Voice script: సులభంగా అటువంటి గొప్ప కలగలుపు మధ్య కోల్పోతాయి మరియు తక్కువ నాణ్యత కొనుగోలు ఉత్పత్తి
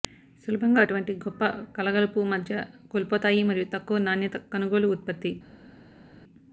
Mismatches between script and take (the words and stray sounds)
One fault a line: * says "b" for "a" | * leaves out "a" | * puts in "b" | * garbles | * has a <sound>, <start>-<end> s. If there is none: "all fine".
all fine